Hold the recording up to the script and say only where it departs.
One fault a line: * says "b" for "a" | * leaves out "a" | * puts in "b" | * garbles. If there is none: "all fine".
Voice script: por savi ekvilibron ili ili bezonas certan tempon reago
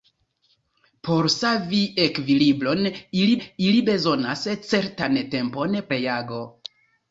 all fine